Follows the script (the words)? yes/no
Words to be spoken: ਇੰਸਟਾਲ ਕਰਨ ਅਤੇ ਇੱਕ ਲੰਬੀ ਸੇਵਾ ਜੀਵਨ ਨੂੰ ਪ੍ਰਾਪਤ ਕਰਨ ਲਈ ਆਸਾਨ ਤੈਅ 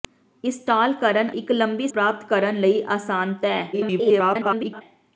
no